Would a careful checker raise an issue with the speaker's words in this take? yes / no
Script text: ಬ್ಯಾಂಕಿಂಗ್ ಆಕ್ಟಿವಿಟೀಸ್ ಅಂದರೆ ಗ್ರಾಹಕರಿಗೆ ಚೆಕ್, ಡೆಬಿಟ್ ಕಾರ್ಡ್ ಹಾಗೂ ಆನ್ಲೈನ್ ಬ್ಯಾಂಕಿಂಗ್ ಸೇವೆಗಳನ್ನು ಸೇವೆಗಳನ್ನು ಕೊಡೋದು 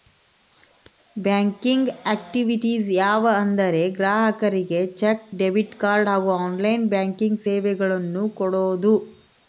yes